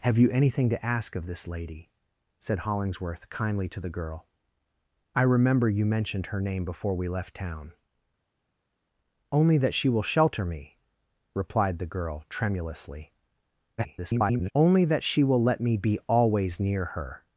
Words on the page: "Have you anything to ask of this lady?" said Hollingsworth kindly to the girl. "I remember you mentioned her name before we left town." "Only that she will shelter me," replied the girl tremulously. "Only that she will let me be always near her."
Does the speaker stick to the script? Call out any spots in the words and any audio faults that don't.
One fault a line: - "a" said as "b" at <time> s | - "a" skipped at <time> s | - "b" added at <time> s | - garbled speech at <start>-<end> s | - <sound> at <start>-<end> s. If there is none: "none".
- garbled speech at 13.8-14.5 s